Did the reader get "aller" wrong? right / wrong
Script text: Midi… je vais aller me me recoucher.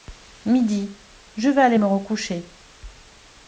right